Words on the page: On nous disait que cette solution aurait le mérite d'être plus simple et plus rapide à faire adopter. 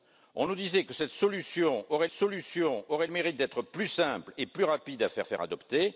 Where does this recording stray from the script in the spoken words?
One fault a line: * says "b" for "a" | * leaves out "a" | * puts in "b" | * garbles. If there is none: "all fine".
* puts in "solution aurait"
* puts in "faire"